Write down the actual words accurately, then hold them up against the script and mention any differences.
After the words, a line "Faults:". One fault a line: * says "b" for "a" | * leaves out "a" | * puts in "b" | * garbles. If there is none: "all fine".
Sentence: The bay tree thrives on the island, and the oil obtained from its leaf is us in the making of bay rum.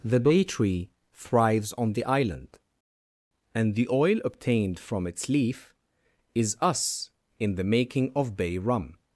The bay tree thrives on the island, and the oil obtained from its leaf is us in the making of bay rum.
Faults:
all fine